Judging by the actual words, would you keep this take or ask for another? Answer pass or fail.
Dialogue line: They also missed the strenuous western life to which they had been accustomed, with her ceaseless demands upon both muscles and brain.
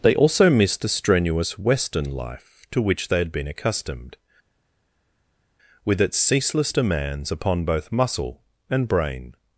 fail